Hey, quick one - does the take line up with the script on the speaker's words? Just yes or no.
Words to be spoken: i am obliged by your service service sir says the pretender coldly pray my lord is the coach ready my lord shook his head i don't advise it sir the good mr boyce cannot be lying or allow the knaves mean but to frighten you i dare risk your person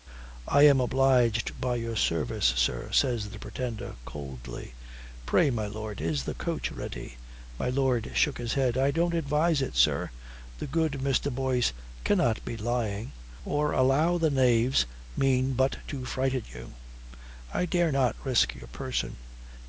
no